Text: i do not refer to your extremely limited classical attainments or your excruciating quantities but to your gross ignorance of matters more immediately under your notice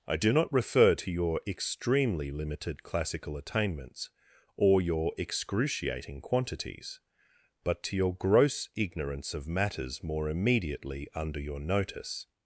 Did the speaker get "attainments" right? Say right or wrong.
right